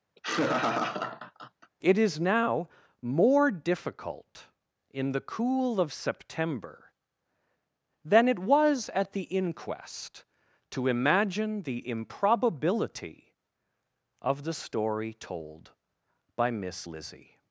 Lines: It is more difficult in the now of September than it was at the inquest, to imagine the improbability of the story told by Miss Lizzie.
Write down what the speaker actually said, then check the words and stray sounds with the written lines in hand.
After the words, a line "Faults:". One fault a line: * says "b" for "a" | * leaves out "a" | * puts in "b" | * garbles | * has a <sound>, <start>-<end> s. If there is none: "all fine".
It is now more difficult in the cool of September than it was at the inquest, to imagine the improbability of the story told by Miss Lizzie.
Faults:
* has a laugh, 0.2-1.7 s
* puts in "now"
* says "cool" for "now"